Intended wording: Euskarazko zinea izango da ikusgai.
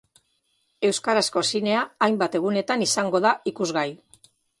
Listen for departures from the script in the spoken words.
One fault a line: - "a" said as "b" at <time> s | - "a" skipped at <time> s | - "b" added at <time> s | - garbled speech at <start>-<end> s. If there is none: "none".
- "hainbat egunetan" added at 2.0 s